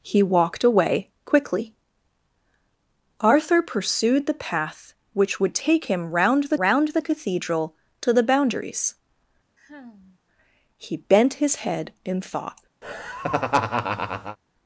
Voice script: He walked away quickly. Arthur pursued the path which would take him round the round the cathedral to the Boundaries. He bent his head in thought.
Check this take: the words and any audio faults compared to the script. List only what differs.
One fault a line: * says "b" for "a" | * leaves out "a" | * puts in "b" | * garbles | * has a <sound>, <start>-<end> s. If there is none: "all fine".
* has a sigh, 9.6-10.2 s
* has a laugh, 12.8-14.4 s